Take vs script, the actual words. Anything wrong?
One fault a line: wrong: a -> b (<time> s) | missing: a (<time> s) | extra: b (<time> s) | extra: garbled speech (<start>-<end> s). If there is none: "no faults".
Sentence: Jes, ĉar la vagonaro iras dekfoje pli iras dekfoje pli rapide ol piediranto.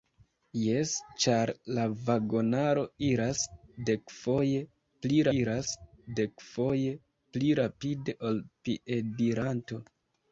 no faults